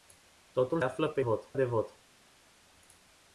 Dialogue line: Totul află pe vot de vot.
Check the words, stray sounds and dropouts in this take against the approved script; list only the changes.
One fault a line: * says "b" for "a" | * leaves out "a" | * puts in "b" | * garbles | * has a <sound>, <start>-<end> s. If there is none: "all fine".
all fine